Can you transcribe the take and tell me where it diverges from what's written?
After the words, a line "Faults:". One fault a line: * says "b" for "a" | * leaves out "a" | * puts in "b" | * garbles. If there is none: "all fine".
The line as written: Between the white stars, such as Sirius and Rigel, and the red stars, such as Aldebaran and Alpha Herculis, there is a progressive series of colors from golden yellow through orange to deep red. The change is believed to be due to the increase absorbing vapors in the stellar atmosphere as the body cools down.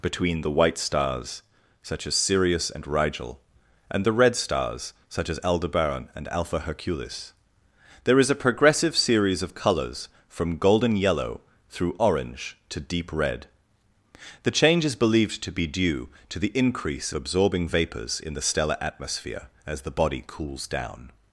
Between the white stars, such as Sirius and Rigel, and the red stars, such as Aldebaran and Alpha Herculis, there is a progressive series of colors from golden yellow through orange to deep red. The change is believed to be due to the increase absorbing vapors in the stellar atmosphere as the body cools down.
Faults:
all fine